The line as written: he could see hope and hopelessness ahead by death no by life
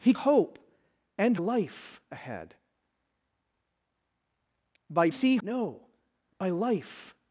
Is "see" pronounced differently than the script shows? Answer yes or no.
yes